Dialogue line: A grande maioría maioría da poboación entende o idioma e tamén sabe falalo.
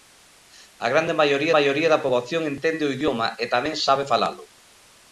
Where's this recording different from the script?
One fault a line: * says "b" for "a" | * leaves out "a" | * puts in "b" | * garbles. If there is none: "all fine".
all fine